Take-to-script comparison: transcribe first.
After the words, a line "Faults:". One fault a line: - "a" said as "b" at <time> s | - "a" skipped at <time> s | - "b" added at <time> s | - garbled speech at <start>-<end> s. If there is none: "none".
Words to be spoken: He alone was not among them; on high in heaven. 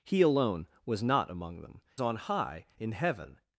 He alone was not among them; on high in heaven.
Faults:
none